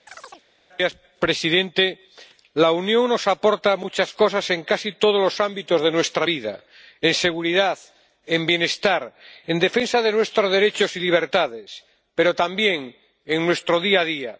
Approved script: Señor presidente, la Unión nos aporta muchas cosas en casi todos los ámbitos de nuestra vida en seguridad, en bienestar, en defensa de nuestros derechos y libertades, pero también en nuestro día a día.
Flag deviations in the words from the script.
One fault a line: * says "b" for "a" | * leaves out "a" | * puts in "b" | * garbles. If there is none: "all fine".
all fine